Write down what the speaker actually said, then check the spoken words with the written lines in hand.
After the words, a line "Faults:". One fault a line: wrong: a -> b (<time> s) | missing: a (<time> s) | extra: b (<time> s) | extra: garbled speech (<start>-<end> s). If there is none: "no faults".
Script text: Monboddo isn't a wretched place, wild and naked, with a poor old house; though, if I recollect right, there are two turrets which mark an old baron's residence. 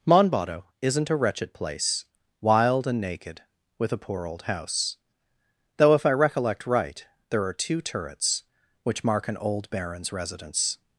Monboddo isn't a wretched place, wild and naked, with a poor old house; though, if I recollect right, there are two turrets which mark an old baron's residence.
Faults:
no faults